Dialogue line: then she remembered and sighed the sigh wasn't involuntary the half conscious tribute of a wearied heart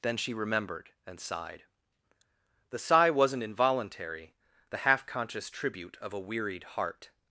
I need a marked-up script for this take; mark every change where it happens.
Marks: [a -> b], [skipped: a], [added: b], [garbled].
then she remembered and sighed the sigh wasn't involuntary the half conscious tribute of a wearied heart